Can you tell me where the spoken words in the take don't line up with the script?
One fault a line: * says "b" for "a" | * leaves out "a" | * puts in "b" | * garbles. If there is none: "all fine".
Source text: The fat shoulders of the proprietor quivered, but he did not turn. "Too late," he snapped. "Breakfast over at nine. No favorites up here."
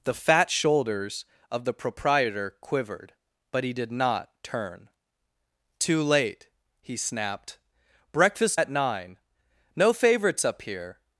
* leaves out "over"